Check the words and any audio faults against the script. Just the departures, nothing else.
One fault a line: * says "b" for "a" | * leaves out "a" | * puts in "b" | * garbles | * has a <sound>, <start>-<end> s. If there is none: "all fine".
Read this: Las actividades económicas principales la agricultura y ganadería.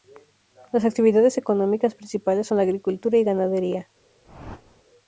* puts in "son"
* has a whoosh, 4.2-4.8 s